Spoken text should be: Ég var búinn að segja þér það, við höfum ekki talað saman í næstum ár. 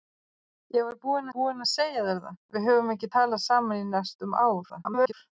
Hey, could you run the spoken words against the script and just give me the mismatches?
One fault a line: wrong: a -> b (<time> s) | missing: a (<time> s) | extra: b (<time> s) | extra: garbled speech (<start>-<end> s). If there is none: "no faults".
extra: búinn (1.3 s)
extra: garbled speech (4.7-5.1 s)